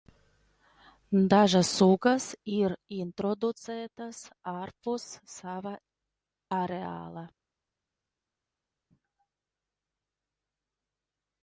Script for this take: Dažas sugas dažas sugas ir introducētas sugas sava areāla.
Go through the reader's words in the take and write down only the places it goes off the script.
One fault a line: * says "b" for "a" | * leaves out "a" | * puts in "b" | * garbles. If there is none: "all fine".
* leaves out "dažas sugas"
* says "ārpus" for "sugas"